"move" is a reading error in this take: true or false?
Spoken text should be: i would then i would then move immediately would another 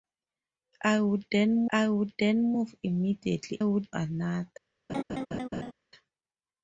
false